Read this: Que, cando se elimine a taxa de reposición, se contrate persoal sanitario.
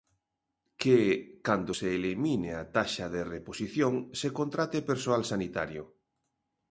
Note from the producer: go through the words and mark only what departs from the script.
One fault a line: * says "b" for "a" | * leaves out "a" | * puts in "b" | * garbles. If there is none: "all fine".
all fine